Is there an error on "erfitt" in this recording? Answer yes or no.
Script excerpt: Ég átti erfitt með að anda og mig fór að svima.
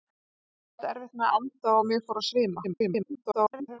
no